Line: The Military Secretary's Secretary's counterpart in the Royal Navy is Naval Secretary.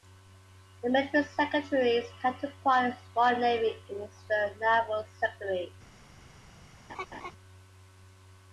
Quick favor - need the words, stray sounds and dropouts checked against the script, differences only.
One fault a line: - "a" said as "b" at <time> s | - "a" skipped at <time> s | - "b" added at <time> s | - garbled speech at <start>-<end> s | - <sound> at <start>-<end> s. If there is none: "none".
- "Secretary's" skipped at 2.1 s
- "the" added at 4.3 s
- laugh at 6.9-7.3 s